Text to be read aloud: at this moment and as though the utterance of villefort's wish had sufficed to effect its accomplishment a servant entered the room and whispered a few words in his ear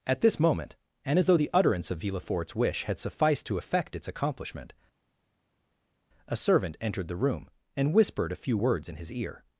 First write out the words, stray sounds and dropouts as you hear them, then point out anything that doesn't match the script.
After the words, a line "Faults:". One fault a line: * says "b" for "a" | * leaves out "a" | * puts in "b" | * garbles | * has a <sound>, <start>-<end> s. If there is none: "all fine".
at this moment and as though the utterance of villefort's wish had sufficed to effect its accomplishment a servant entered the room and whispered a few words in his ear
Faults:
all fine